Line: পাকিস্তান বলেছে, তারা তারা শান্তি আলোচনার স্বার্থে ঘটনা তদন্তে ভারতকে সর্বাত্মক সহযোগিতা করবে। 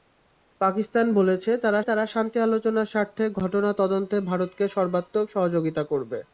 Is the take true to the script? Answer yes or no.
yes